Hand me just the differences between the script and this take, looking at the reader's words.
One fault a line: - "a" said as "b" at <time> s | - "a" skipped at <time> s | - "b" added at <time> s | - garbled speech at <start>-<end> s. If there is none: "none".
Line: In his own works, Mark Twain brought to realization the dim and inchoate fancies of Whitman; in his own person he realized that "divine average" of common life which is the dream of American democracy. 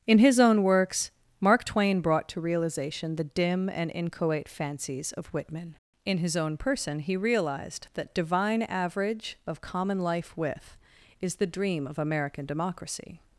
- "which" said as "with" at 10.4 s